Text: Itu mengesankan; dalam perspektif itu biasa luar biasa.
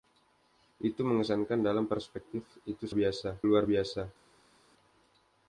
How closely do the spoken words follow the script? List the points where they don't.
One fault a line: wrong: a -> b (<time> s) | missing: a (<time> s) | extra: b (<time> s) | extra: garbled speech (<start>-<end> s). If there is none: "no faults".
no faults